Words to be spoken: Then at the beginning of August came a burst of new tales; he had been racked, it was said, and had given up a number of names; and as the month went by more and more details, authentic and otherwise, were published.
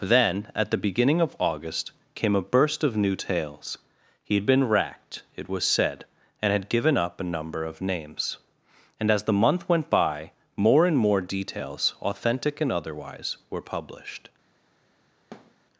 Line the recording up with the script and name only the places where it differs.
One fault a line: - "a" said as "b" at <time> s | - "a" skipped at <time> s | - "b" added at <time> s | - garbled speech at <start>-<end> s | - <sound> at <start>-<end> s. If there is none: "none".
- thud at 15.3-15.6 s